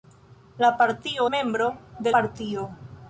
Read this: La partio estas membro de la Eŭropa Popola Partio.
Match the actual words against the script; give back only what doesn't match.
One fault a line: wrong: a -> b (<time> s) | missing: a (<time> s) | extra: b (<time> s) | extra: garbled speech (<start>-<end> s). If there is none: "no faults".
missing: estas (1.3 s)
missing: la Eŭropa Popola (2.2 s)